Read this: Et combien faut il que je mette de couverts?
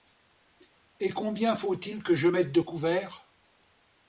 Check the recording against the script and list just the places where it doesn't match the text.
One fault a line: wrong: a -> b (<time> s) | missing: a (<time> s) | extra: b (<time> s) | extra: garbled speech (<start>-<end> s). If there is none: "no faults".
no faults